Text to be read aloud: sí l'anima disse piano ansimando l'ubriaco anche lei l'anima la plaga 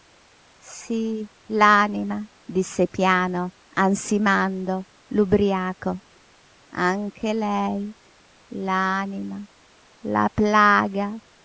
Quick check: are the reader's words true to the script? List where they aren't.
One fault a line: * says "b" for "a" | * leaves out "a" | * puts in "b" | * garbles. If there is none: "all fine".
all fine